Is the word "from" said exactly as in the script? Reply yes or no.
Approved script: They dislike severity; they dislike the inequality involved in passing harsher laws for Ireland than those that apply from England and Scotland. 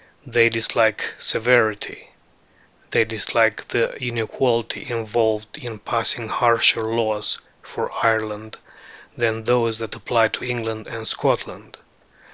no